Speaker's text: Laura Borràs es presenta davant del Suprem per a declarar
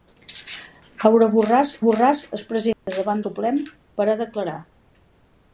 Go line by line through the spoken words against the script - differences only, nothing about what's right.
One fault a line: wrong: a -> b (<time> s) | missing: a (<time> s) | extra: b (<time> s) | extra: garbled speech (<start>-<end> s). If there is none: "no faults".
extra: Borràs (1.9 s)
missing: del (3.2 s)